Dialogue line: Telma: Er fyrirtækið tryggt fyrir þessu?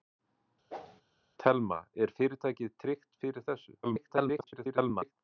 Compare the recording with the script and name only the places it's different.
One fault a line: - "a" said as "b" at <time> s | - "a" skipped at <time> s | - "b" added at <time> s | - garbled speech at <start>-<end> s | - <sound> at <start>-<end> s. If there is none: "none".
- whoosh at 0.7-1.0 s
- garbled speech at 3.8-5.1 s